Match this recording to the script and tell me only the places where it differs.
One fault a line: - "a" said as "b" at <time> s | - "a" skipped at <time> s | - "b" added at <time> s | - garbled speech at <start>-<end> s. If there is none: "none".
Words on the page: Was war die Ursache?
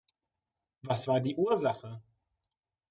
none